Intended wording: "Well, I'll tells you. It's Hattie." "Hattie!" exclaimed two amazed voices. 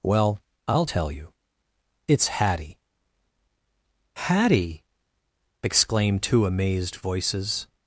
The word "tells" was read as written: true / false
false